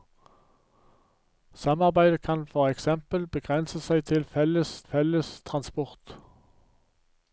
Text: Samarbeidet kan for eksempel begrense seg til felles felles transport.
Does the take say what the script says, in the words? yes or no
yes